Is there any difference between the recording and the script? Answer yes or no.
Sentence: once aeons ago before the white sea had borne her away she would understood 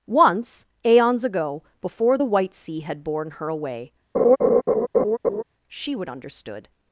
no